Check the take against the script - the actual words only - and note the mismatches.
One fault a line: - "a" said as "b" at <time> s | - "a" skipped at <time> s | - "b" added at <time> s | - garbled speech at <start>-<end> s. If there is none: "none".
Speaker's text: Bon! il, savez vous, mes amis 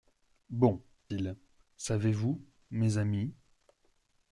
none